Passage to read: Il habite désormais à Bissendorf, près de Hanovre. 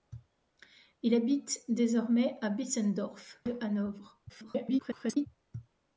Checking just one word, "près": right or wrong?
wrong